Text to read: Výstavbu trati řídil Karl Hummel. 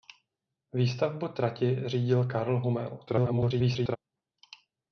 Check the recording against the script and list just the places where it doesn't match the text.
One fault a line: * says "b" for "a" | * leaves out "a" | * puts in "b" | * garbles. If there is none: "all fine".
* garbles